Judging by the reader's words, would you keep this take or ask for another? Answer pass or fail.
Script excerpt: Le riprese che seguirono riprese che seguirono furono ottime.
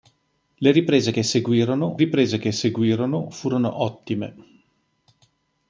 pass